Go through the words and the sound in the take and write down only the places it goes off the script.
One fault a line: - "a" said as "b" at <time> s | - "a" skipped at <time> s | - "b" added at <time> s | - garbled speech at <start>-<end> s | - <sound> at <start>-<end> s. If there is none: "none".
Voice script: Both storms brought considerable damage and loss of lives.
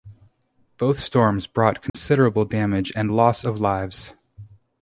- dropout at 1.9-1.9 s